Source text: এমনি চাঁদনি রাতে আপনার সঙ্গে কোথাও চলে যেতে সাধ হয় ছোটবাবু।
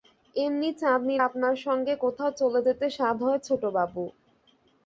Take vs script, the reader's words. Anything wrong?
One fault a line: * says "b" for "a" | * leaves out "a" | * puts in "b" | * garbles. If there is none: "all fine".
* leaves out "রাতে"